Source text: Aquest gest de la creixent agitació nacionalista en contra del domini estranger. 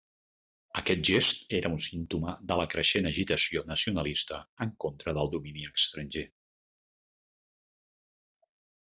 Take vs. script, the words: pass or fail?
fail